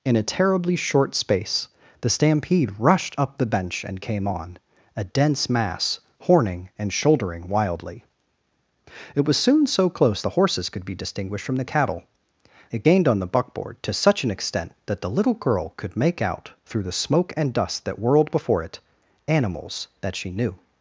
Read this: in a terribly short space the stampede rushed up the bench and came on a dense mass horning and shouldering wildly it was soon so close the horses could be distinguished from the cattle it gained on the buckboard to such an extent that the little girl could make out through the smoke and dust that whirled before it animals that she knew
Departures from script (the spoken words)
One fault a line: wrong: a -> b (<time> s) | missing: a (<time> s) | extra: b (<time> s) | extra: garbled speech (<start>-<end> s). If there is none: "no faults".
no faults